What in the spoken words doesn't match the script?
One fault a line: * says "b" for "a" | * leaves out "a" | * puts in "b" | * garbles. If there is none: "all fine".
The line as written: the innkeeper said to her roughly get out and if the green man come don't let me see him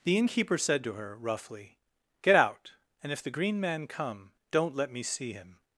all fine